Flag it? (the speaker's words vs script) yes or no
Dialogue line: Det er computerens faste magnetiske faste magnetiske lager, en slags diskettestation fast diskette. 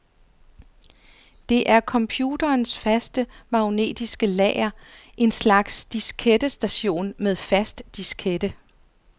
yes